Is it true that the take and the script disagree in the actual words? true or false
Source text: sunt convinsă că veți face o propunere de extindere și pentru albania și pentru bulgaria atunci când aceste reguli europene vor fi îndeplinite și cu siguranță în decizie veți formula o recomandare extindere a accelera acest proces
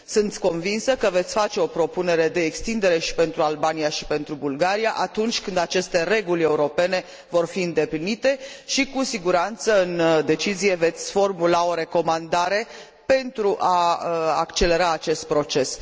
true